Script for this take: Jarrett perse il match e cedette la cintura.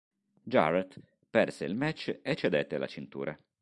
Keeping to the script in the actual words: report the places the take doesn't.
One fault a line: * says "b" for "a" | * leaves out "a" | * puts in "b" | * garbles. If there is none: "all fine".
all fine